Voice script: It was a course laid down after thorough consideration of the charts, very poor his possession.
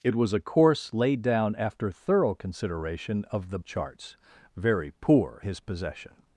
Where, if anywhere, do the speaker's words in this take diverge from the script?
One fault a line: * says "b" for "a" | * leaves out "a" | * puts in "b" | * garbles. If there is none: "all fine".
all fine